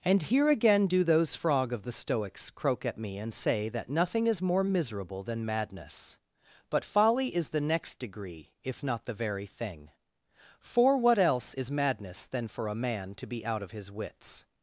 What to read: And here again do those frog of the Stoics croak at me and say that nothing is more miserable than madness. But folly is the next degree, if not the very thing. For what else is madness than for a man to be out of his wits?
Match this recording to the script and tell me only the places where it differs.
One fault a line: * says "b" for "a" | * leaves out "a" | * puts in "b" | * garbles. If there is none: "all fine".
all fine